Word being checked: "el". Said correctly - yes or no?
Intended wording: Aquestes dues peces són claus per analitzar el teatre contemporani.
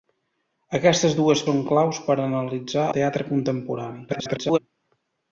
no